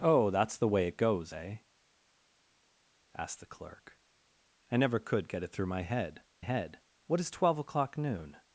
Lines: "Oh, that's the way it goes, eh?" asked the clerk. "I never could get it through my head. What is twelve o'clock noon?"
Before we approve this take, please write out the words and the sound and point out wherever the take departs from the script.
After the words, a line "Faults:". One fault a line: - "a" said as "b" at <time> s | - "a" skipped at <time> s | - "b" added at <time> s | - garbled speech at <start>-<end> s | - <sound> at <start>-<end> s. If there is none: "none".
"Oh, that's the way it goes, eh?" asked the clerk. "I never could get it through my head head. What is twelve o'clock noon?"
Faults:
- "head" added at 6.4 s